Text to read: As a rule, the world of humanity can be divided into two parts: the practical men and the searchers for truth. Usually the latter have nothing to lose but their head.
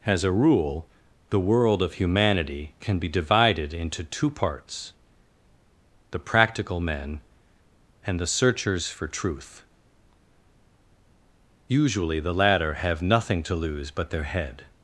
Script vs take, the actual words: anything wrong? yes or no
no